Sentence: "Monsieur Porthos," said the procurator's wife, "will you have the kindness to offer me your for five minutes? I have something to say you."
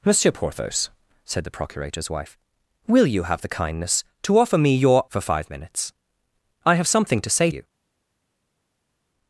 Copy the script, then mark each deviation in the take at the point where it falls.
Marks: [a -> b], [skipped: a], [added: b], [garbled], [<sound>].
"Monsieur Porthos," said the procurator's wife, "will you have the kindness to offer me your for five minutes? I have something to say you."